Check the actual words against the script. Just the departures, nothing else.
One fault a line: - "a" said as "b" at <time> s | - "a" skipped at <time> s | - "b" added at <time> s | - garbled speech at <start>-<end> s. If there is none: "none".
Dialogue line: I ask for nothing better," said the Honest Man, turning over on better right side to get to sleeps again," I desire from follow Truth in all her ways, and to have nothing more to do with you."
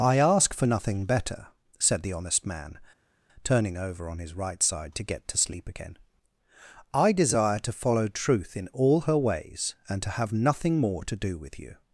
- "better" said as "his" at 4.2 s
- "sleeps" said as "sleep" at 5.4 s
- "from" said as "to" at 7.6 s